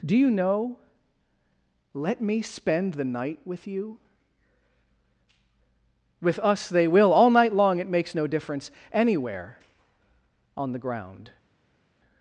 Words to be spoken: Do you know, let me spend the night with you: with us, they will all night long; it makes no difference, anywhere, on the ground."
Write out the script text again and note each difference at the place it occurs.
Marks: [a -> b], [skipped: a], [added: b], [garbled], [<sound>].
Do you know, let me spend the night with you: with us, they will all night long; it makes no difference, anywhere, on the ground."